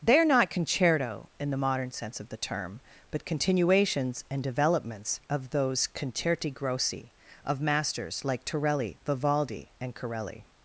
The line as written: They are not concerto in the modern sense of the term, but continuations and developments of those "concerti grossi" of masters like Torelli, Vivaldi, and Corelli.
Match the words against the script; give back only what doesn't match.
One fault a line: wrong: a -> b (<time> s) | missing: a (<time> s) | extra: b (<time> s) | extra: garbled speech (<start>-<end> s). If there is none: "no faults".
no faults